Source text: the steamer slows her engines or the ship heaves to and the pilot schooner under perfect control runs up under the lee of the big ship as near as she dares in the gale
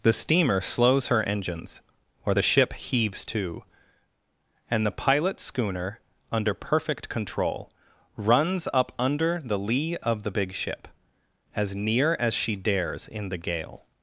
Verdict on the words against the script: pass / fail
pass